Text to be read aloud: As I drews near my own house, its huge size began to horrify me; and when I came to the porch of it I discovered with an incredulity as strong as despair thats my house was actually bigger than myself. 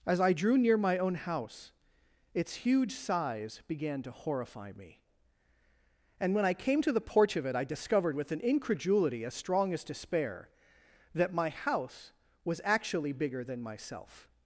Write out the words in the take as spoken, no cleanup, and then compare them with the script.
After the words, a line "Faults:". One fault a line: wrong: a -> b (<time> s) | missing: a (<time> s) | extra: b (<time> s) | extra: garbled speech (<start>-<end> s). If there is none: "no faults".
As I drew near my own house, its huge size began to horrify me; and when I came to the porch of it I discovered with an incredulity as strong as despair that my house was actually bigger than myself.
Faults:
wrong: drews -> drew (0.3 s)
wrong: thats -> that (11.1 s)